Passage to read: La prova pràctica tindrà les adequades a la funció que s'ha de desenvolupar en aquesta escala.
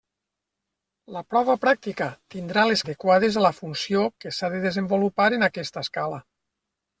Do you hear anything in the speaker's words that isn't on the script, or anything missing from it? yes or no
no